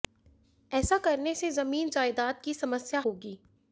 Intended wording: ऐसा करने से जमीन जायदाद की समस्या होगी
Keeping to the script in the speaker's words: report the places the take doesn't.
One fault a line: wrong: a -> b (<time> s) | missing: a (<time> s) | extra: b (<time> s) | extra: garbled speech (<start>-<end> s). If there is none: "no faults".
no faults